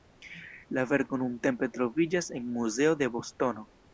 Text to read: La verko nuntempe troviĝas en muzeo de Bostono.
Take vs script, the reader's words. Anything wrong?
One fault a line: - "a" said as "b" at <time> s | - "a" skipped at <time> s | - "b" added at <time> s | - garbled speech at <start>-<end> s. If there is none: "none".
none